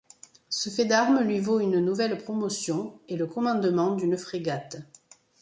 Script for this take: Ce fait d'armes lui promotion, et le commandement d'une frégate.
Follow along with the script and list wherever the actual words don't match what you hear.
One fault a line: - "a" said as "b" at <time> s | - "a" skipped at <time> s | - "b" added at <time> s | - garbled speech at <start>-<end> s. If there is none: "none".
- "vaut une nouvelle" added at 1.4 s